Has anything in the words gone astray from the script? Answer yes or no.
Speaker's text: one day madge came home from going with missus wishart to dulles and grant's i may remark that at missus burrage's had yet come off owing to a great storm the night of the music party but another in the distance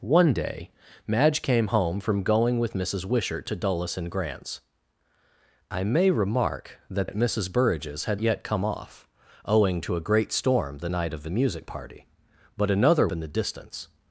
no